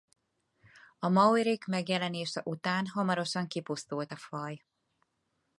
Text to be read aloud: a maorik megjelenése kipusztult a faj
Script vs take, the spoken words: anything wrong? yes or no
yes